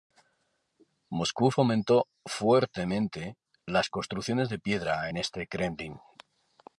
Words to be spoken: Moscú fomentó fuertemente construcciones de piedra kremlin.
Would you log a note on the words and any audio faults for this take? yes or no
yes